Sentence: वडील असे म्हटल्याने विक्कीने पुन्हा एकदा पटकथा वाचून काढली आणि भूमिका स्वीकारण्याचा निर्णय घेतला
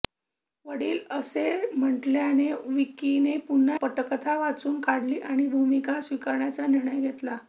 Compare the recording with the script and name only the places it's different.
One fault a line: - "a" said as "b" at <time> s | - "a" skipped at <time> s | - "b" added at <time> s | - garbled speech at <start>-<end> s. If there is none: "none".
- "एकदा" skipped at 3.8 s